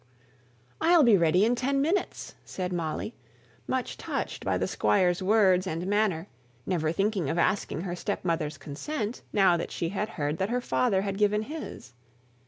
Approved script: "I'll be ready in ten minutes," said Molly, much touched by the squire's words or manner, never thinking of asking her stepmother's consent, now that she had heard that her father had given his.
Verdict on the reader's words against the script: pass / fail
fail